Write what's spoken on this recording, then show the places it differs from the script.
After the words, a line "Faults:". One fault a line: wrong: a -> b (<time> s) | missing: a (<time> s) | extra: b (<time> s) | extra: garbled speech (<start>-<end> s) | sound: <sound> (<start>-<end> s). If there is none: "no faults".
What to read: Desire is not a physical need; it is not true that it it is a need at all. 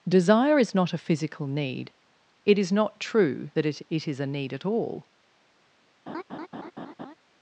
Desire is not a physical need; it is not true that it it is a need at all.
Faults:
sound: laugh (6.1-7.1 s)